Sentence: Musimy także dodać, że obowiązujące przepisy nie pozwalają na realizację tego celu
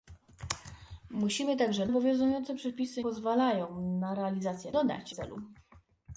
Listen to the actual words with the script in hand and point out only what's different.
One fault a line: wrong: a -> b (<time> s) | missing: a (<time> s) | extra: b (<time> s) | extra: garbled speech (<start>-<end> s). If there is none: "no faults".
missing: dodać że (1.9 s)
missing: nie (3.0 s)
wrong: tego -> dodać (4.7 s)